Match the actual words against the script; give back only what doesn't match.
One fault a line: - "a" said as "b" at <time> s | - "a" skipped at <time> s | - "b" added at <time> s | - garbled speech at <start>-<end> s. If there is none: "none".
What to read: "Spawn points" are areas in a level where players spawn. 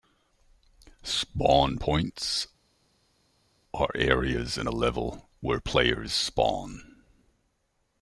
none